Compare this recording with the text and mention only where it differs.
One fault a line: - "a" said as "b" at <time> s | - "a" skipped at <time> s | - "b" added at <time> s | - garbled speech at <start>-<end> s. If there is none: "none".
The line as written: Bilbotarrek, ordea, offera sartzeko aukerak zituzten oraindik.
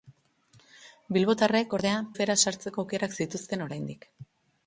none